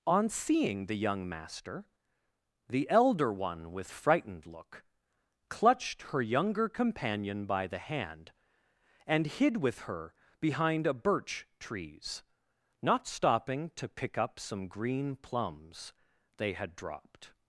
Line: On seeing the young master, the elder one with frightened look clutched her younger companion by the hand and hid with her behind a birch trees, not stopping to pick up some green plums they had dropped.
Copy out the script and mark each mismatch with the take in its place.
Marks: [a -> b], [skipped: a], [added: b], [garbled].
On seeing the young master, the elder one with frightened look clutched her younger companion by the hand and hid with her behind a birch trees, not stopping to pick up some green plums they had dropped.